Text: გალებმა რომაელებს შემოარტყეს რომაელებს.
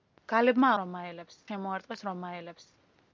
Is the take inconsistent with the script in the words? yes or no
no